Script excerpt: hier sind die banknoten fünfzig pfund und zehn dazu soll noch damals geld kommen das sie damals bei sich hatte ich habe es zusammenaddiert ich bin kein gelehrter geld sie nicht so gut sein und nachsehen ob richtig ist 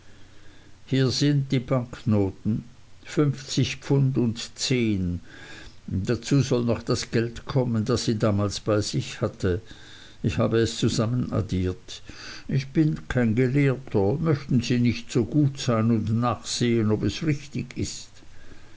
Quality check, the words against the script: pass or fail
fail